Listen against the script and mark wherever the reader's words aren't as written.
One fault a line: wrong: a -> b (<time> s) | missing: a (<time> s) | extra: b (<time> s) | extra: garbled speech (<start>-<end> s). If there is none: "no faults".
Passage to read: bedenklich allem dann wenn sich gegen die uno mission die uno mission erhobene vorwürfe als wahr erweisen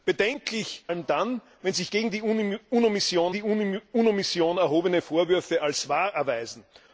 no faults